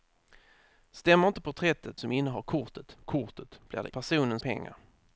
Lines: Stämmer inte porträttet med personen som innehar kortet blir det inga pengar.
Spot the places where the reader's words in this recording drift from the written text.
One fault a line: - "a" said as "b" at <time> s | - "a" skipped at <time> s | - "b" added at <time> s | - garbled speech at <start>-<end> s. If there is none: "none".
- "med personen" skipped at 2.0 s
- "kortet" added at 3.0 s
- "inga" said as "personen" at 3.9 s